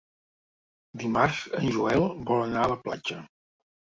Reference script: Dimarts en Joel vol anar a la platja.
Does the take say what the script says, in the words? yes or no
yes